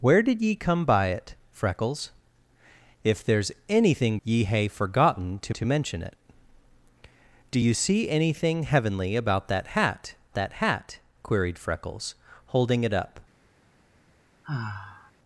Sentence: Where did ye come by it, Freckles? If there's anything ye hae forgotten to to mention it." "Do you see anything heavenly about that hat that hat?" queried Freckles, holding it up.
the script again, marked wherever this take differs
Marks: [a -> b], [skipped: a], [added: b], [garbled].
Where did ye come by it, Freckles? If there's anything ye hae forgotten to to mention it." "Do you see anything heavenly about that hat that hat?" queried Freckles, holding it up.